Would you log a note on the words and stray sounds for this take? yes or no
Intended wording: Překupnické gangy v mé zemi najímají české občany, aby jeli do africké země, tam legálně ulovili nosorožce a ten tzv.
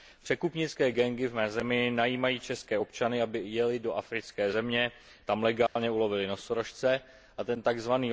yes